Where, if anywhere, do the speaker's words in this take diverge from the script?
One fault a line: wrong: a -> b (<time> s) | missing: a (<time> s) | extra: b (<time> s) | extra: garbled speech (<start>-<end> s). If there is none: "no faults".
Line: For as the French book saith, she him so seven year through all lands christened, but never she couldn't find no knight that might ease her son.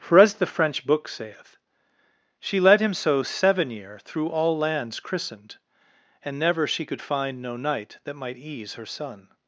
extra: led (2.6 s)
wrong: but -> and (6.2 s)
wrong: couldn't -> could (6.8 s)